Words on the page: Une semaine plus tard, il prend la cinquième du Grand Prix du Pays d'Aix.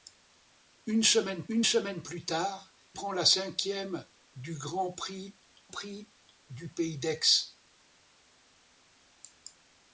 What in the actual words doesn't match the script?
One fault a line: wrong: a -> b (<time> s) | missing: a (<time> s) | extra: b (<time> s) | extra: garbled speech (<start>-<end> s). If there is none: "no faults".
extra: une semaine (1.5 s)
missing: il (2.7 s)
extra: Prix (5.7 s)